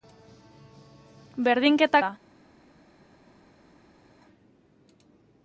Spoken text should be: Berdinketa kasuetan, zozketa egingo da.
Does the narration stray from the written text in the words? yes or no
yes